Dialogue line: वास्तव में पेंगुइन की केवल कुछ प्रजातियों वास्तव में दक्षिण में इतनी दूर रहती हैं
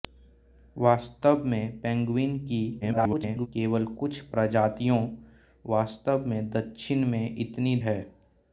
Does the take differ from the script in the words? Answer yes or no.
yes